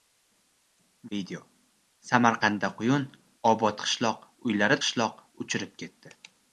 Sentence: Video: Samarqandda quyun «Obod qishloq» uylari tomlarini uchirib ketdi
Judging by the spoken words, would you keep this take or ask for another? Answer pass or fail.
fail